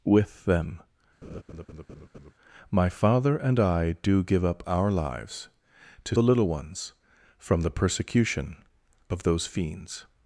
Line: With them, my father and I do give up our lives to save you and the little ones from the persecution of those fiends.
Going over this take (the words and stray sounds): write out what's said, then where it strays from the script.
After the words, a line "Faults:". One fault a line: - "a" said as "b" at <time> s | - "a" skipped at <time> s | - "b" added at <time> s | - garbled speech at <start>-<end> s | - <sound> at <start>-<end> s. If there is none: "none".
With them, my father and I do give up our lives to the little ones from the persecution of those fiends.
Faults:
- laugh at 1.2-2.3 s
- "save you and" skipped at 6.2 s